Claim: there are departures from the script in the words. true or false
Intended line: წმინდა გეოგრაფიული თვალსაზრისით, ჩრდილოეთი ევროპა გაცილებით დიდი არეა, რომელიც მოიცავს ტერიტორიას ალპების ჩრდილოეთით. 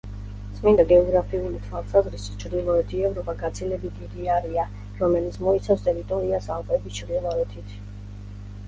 false